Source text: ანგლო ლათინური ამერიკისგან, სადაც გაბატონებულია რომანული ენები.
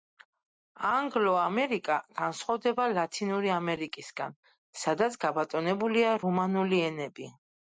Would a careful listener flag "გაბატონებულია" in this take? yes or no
no